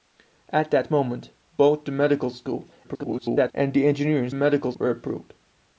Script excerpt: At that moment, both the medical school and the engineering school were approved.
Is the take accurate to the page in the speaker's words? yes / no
no